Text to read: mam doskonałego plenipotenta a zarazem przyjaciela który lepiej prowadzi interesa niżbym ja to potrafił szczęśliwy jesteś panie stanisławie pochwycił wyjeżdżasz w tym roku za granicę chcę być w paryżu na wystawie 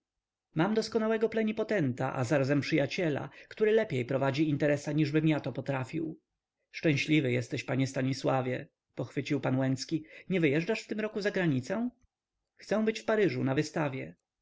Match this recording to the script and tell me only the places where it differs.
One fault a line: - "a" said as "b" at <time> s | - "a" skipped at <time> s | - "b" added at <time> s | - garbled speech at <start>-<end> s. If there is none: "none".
- "pan łęcki nie" added at 9.4 s